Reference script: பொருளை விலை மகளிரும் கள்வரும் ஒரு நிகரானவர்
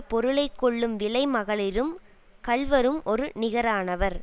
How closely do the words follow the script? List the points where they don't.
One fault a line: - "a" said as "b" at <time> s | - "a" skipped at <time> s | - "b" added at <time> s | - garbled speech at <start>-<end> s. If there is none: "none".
- "கொள்ளும்" added at 0.6 s